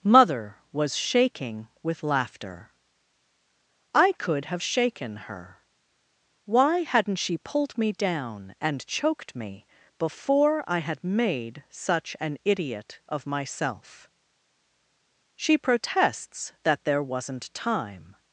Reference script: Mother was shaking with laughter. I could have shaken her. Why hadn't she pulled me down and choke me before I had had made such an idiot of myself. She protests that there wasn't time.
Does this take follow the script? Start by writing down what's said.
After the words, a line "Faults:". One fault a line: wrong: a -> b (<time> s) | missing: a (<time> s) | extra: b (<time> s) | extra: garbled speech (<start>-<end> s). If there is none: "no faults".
Mother was shaking with laughter. I could have shaken her. Why hadn't she pulled me down and choked me before I had made such an idiot of myself. She protests that there wasn't time.
Faults:
wrong: choke -> choked (8.9 s)
missing: had (11.0 s)